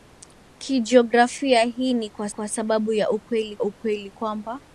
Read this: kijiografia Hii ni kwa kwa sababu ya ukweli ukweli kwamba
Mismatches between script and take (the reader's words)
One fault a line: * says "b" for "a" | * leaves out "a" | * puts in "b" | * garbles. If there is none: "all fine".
all fine